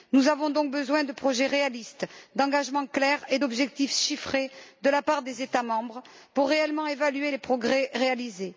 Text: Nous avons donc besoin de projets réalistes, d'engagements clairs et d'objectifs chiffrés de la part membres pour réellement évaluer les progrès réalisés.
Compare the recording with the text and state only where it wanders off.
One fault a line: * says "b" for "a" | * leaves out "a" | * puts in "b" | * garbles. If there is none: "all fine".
* puts in "des États"